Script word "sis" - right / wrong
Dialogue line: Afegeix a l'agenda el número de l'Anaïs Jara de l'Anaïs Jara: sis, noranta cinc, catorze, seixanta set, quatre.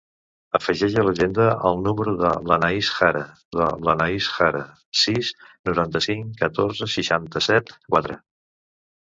right